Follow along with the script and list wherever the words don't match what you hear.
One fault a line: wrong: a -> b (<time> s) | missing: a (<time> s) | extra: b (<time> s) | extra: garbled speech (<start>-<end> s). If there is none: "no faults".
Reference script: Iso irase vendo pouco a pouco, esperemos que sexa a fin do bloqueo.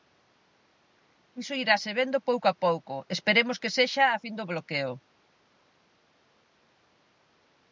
no faults